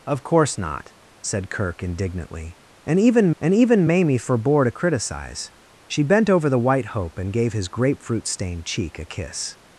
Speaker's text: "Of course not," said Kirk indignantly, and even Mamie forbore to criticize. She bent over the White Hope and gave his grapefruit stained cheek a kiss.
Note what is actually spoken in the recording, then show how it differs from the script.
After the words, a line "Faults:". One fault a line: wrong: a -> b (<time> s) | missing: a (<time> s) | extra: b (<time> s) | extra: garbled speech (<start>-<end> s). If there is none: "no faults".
"Of course not," said Kirk indignantly, and even and even Mamie forbore to criticize. She bent over the White Hope and gave his grapefruit stained cheek a kiss.
Faults:
extra: and even (3.4 s)